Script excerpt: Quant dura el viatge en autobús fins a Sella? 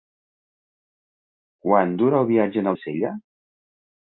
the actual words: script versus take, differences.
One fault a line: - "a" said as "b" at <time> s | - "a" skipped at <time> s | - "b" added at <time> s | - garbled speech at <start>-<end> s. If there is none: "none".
- "autobús fins" skipped at 2.7 s